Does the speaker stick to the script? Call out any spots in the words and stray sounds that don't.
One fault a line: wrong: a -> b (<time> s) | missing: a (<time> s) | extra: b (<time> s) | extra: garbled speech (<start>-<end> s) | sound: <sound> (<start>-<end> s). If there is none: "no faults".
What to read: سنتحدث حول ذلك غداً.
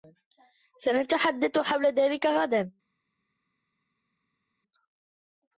no faults